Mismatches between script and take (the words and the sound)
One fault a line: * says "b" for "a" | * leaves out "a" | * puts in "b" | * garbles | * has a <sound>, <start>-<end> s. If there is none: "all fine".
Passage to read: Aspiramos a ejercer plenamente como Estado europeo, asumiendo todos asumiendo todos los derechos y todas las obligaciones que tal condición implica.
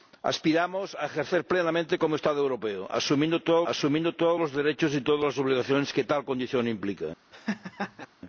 * has a laugh, 7.3-8.1 s